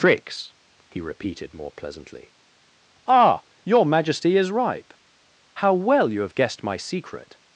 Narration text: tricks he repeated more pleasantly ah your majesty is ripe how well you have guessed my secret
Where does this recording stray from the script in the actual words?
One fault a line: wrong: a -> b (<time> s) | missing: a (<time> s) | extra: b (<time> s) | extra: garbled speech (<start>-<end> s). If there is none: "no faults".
no faults